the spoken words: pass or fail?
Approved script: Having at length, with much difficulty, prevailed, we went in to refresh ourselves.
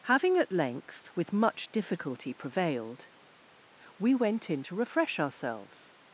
pass